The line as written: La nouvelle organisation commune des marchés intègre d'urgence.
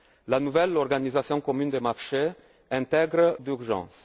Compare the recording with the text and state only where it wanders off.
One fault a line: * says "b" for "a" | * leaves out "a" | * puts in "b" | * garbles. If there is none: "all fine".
all fine